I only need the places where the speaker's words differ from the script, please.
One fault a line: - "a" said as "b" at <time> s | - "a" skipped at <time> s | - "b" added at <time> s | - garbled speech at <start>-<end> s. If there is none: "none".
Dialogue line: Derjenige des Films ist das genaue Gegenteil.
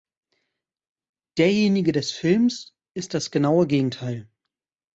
none